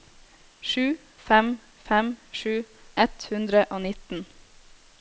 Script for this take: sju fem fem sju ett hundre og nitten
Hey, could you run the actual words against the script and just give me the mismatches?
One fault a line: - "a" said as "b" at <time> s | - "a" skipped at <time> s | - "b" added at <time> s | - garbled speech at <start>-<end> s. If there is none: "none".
none